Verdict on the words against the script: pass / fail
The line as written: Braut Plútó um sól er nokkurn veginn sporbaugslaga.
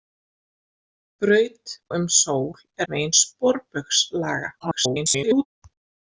fail